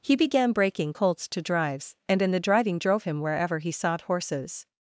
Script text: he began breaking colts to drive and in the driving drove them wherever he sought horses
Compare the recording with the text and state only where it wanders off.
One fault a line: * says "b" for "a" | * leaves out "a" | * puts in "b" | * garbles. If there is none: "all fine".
* says "drives" for "drive"
* says "him" for "them"